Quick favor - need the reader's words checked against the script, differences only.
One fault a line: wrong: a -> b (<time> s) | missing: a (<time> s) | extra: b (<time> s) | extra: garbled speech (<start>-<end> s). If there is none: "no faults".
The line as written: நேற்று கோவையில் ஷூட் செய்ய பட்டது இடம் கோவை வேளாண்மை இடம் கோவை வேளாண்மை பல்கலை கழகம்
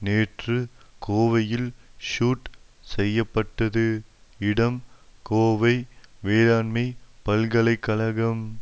missing: இடம் கோவை வேளாண்மை (6.8 s)